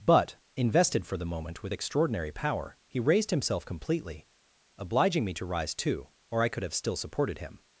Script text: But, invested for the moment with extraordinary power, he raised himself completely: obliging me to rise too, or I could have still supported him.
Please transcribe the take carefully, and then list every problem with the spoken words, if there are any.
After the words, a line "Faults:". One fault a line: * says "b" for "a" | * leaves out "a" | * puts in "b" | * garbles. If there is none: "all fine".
But, invested for the moment with extraordinary power, he raised himself completely: obliging me to rise too, or I could have still supported him.
Faults:
all fine